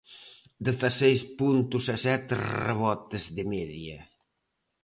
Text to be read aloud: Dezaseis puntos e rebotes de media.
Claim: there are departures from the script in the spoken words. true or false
true